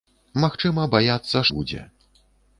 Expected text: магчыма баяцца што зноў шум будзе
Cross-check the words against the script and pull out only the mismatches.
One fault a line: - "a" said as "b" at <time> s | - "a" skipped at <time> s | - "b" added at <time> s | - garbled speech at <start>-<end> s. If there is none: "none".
- "што зноў шум" skipped at 1.4 s